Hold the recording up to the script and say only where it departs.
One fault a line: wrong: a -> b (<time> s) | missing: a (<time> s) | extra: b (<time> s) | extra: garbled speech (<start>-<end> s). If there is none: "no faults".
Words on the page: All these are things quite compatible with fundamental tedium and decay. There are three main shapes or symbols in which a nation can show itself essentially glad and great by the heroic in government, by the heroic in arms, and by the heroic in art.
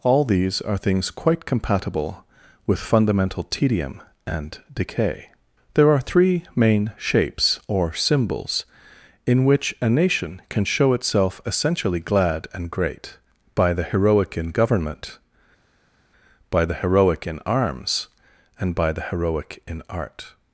no faults